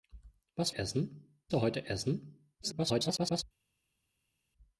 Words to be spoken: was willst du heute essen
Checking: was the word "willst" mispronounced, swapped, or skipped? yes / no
yes